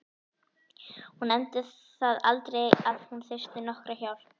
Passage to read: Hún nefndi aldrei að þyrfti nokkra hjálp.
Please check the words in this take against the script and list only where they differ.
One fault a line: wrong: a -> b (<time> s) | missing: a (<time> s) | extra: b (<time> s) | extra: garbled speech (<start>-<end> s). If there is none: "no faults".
extra: það (1.7 s)
extra: hún (3.1 s)